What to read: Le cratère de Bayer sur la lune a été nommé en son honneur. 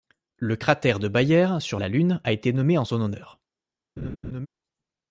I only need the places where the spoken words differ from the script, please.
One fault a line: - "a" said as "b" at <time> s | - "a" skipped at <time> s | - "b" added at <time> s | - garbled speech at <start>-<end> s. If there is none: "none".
none